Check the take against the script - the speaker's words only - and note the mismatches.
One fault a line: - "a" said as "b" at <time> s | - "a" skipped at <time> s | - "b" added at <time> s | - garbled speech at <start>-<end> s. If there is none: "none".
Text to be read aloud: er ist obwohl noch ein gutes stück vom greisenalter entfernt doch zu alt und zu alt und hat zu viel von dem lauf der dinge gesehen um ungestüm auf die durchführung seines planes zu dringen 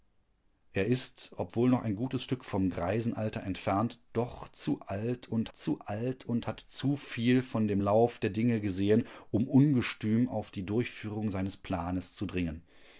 none